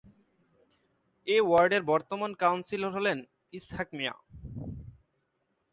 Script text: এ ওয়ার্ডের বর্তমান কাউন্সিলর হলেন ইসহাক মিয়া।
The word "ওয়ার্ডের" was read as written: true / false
true